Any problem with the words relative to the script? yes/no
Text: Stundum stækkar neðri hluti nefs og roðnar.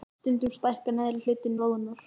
yes